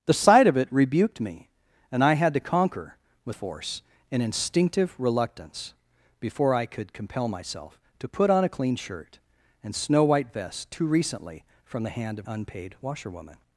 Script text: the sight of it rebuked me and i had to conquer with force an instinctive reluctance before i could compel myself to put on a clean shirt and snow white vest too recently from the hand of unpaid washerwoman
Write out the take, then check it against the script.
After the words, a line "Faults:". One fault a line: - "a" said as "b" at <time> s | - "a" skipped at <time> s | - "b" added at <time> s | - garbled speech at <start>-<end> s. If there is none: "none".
the sight of it rebuked me and i had to conquer with force an instinctive reluctance before i could compel myself to put on a clean shirt and snow white vest too recently from the hand of unpaid washerwoman
Faults:
none